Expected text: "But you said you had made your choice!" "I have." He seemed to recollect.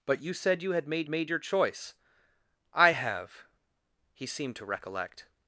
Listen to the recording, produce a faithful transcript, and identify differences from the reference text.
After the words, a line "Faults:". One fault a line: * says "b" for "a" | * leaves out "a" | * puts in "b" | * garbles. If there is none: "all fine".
"But you said you had made made your choice!" "I have." He seemed to recollect.
Faults:
* puts in "made"